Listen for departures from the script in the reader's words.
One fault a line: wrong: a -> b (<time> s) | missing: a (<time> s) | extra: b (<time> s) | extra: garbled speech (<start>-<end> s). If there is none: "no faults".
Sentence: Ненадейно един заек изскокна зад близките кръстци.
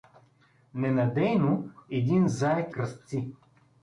missing: изскокна зад близките (2.7 s)